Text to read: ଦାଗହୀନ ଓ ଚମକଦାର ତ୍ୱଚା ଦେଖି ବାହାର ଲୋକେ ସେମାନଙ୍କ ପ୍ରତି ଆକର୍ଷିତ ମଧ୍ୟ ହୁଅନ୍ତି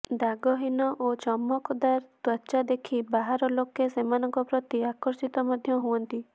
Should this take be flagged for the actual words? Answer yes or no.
no